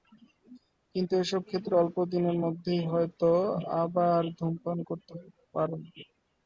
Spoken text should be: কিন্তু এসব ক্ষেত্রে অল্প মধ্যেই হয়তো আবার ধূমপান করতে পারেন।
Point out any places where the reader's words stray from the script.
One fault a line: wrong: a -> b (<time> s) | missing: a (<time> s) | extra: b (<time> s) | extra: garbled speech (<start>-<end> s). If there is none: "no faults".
extra: দিনের (2.1 s)